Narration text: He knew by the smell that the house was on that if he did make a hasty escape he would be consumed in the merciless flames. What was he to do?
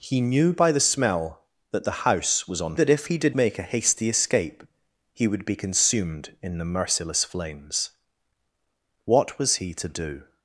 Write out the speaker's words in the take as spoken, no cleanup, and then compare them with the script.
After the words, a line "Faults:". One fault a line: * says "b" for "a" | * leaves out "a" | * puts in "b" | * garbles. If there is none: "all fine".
He knew by the smell that the house was on that if he did make a hasty escape he would be consumed in the merciless flames. What was he to do?
Faults:
all fine